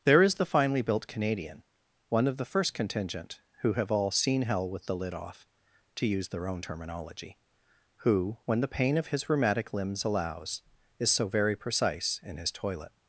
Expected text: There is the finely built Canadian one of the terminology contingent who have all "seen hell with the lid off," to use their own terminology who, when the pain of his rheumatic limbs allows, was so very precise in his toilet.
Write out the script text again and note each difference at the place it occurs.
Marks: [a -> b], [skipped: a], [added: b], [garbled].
There is the finely built Canadian one of the [terminology -> first] contingent who have all "seen hell with the lid off," to use their own terminology who, when the pain of his rheumatic limbs allows, [was -> is] so very precise in his toilet.